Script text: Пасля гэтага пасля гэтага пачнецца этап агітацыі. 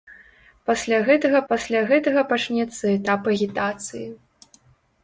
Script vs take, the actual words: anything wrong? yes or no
no